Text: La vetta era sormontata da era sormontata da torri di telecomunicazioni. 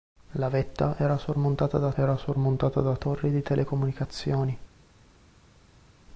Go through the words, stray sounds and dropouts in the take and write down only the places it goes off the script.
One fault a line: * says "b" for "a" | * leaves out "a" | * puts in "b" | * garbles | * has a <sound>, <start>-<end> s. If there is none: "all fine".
all fine